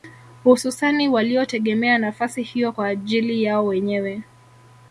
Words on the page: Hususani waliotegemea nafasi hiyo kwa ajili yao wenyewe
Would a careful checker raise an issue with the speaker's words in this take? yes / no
no